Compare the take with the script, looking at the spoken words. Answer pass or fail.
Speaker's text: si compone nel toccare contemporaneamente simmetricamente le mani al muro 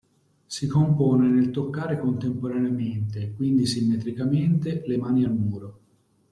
fail